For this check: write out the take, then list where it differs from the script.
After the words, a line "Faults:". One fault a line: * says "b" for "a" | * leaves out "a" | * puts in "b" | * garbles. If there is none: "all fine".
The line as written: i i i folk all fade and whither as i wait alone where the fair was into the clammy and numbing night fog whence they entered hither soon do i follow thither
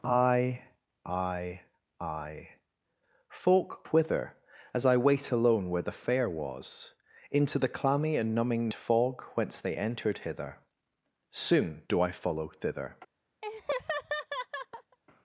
i i i folk whither as i wait alone where the fair was into the clammy and numbing fog whence they entered hither soon do i follow thither
Faults:
* leaves out "all fade and"
* leaves out "night"